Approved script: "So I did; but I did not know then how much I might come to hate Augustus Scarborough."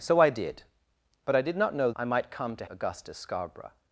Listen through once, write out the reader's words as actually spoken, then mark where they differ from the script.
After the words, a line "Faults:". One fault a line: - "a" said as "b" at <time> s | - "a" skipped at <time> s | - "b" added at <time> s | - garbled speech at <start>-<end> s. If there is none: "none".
"So I did; but I did not know I might come to Augustus Scarborough."
Faults:
- "then how much" skipped at 1.9 s
- "hate" skipped at 2.6 s